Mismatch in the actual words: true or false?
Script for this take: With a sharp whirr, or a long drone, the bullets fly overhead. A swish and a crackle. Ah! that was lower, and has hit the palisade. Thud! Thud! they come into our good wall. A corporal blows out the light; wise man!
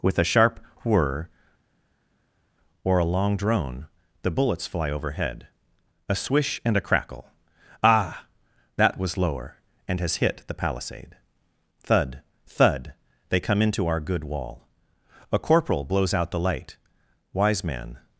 false